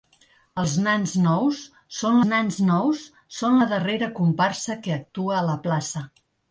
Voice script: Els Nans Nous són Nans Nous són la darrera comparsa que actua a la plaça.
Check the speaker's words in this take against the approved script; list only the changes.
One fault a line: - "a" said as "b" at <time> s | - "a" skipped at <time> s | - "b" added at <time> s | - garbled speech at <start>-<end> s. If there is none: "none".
none